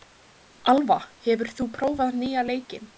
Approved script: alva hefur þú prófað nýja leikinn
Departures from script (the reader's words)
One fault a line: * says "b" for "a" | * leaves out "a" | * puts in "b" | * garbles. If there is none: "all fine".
all fine